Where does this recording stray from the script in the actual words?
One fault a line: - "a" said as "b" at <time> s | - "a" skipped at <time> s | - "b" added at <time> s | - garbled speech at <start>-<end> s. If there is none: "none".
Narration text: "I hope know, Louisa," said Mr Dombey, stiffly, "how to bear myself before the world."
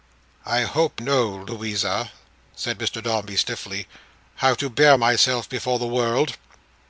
none